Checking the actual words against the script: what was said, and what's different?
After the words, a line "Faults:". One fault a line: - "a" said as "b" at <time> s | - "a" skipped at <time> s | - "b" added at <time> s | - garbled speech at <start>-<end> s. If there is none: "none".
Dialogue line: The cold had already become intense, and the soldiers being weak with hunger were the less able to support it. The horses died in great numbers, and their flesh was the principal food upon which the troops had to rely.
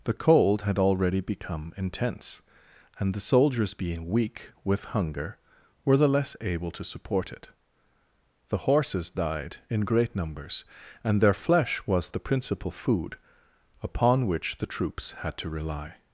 The cold had already become intense, and the soldiers being weak with hunger were the less able to support it. The horses died in great numbers, and their flesh was the principal food upon which the troops had to rely.
Faults:
none